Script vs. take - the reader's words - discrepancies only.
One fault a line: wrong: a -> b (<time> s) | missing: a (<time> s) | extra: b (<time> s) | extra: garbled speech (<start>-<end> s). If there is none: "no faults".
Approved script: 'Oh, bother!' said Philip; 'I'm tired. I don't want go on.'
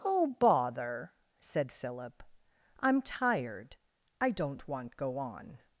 no faults